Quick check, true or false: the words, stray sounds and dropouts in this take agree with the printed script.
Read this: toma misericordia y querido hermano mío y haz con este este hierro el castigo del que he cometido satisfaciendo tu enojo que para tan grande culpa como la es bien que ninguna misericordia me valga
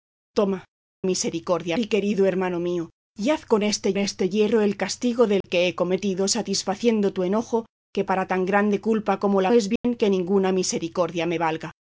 false